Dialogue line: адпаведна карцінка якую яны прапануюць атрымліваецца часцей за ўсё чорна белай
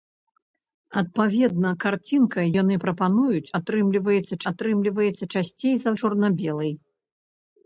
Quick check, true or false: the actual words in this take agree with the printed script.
false